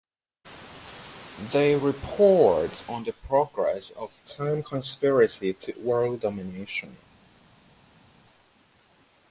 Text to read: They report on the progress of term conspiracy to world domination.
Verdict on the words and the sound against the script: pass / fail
pass